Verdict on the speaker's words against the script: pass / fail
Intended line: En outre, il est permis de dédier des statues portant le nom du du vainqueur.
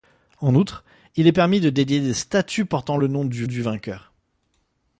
pass